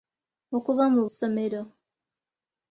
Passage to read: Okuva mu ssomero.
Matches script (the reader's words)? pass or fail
pass